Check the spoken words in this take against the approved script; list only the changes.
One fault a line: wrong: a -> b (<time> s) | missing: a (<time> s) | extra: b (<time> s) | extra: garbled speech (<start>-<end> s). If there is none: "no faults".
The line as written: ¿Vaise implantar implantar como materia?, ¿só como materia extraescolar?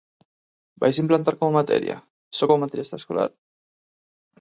missing: implantar (1.4 s)